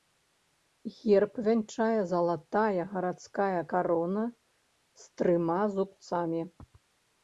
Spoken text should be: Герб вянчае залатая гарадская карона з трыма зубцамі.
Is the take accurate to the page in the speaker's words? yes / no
yes